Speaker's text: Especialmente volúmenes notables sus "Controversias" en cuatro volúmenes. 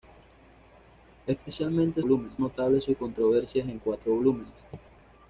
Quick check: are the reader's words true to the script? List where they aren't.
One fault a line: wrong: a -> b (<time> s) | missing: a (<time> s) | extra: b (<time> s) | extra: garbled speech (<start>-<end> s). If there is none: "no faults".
no faults